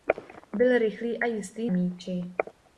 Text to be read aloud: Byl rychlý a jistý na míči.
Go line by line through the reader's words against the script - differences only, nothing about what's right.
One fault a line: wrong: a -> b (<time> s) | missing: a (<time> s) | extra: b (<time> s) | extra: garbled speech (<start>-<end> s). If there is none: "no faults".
missing: na (1.7 s)